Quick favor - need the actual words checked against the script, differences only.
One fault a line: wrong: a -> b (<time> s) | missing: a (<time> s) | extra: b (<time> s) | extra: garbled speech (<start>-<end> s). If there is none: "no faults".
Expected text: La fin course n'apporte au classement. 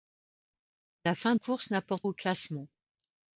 no faults